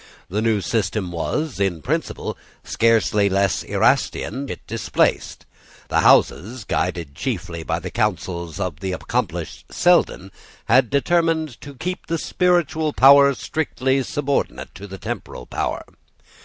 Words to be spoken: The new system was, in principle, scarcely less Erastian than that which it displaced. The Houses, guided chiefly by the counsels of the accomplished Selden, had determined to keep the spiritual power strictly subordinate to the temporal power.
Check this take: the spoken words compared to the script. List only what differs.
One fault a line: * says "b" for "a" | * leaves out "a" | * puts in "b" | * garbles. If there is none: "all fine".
* leaves out "than that which"